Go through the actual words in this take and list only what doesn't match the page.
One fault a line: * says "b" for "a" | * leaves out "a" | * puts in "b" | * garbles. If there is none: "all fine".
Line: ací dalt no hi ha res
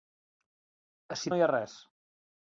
* leaves out "dalt"